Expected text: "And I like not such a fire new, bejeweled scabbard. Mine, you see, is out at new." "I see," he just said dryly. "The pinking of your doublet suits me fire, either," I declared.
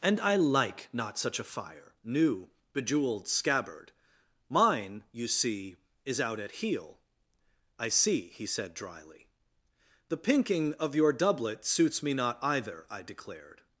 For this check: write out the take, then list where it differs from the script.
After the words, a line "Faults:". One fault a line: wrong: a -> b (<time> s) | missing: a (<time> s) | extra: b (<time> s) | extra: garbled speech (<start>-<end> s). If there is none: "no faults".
"And I like not such a fire new, bejeweled scabbard. Mine, you see, is out at heel." "I see," he said dryly. "The pinking of your doublet suits me not, either," I declared.
Faults:
wrong: new -> heel (6.5 s)
missing: just (8.4 s)
wrong: fire -> not (12.1 s)